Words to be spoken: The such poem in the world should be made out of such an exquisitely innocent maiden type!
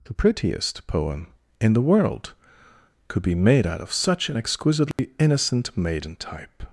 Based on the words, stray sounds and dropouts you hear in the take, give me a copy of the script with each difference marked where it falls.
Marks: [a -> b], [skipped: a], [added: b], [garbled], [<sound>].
The [such -> prettiest] poem in the world [should -> could] be made out of such an exquisitely [dropout] innocent maiden type!